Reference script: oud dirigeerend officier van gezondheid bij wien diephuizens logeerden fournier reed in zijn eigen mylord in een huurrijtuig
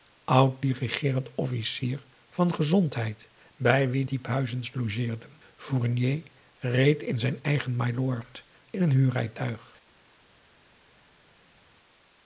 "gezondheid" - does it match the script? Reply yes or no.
yes